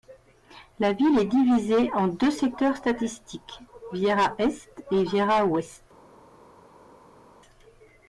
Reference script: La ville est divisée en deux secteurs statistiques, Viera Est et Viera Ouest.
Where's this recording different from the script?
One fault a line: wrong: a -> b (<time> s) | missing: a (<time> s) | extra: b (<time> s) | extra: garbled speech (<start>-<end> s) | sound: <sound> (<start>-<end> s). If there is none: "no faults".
no faults